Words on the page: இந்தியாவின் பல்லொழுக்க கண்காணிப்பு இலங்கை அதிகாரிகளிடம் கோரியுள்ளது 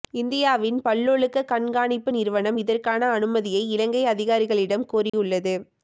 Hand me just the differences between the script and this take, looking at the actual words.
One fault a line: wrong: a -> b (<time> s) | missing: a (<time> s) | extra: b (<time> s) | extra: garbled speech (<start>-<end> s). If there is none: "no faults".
extra: நிறுவனம் இதற்கான அனுமதியை (2.1 s)